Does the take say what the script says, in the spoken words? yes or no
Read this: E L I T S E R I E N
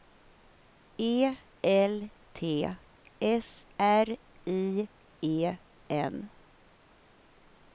no